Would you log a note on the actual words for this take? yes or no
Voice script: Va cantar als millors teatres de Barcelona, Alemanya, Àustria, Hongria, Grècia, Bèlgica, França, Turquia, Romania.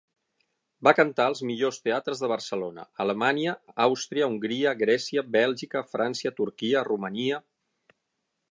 no